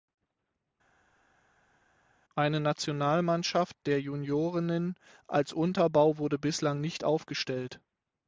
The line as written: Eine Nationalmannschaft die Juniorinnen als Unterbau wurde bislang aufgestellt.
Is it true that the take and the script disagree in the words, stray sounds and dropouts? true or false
true